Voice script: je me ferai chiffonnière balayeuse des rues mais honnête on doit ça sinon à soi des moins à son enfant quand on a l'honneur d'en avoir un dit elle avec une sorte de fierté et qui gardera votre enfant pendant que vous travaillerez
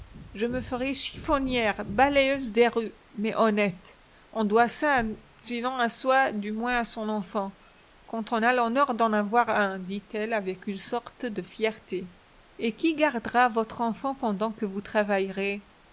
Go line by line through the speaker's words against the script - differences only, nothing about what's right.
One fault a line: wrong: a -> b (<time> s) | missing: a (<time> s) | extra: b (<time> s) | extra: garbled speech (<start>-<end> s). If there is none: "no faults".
wrong: des -> du (6.3 s)